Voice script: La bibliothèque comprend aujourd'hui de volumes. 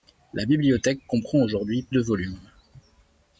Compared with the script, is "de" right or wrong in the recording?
right